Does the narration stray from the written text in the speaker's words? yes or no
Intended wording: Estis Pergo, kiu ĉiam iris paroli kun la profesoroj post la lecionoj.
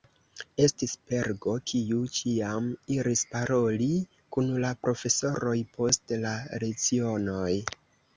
no